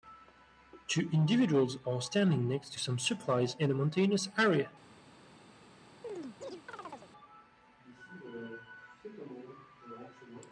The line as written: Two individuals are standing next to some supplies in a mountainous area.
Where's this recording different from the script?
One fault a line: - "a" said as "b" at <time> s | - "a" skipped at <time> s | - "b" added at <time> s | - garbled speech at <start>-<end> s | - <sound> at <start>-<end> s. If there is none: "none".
- chirp at 6.0-7.1 s